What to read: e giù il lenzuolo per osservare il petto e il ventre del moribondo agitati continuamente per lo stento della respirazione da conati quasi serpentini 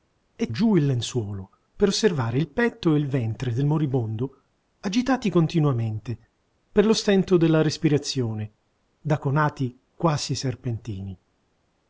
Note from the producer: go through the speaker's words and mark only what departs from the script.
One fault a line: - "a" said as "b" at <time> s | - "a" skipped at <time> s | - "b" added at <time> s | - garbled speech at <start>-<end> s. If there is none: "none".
none